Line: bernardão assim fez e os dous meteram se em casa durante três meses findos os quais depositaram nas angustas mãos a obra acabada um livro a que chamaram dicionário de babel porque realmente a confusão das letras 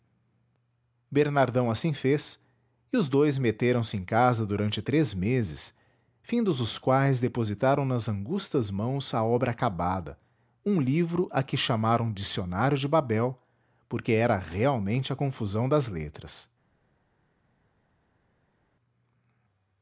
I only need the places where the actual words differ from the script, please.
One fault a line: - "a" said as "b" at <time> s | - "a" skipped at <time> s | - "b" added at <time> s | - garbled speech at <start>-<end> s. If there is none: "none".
- "era" added at 14.1 s